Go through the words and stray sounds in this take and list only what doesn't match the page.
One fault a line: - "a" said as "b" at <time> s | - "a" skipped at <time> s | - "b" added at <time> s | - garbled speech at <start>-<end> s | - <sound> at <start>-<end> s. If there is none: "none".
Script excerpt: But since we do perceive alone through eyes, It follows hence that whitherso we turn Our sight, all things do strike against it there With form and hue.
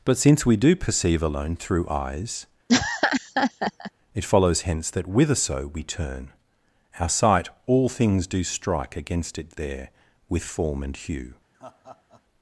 - laugh at 2.7-3.9 s
- laugh at 11.5-12.2 s